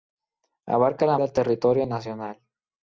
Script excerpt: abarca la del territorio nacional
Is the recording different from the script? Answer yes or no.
no